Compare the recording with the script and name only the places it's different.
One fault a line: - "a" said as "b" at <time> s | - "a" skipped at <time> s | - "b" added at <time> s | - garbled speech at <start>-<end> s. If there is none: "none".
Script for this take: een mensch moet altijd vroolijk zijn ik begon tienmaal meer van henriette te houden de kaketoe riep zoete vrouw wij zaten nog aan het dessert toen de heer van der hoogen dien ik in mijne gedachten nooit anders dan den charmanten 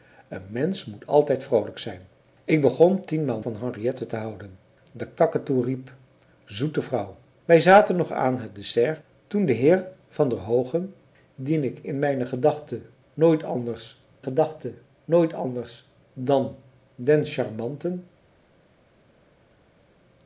- "meer" skipped at 3.4 s
- "gedachten nooit anders" added at 14.2 s